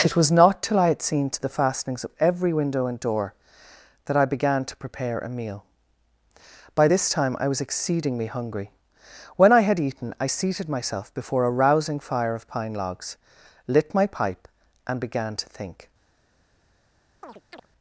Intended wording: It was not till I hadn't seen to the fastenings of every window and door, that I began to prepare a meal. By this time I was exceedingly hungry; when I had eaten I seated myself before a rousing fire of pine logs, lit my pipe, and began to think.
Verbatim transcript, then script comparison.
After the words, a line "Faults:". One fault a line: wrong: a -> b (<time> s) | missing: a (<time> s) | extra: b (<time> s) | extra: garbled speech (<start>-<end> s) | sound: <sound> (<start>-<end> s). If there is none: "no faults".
It was not till I had seen to the fastenings of every window and door, that I began to prepare a meal. By this time I was exceedingly hungry; when I had eaten I seated myself before a rousing fire of pine logs, lit my pipe, and began to think.
Faults:
wrong: hadn't -> had (0.9 s)
sound: chirp (17.2-17.7 s)